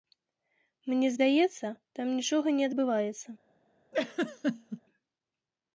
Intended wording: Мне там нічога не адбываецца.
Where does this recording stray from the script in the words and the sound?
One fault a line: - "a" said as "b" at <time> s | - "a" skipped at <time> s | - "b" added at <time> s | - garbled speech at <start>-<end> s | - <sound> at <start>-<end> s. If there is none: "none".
- "здаецца" added at 1.1 s
- laugh at 3.9-4.8 s